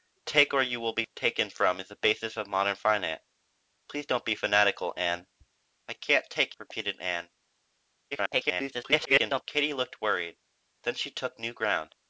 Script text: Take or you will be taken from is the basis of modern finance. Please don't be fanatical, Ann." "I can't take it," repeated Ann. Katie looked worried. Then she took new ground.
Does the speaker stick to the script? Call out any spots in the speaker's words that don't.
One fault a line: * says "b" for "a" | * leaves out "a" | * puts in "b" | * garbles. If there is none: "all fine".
* leaves out "it"
* garbles